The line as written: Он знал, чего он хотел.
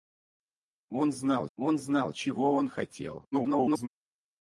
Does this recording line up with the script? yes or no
no